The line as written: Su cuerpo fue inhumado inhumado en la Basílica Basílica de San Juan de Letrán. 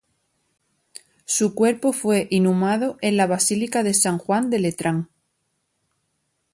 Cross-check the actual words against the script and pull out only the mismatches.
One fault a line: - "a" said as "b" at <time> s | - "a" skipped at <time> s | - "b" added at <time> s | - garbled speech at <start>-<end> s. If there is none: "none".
- "inhumado" skipped at 3.0 s
- "Basílica" skipped at 3.8 s